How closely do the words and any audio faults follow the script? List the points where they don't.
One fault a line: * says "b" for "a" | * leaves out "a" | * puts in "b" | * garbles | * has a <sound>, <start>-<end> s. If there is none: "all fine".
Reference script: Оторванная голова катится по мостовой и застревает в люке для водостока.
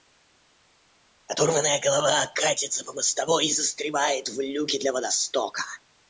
all fine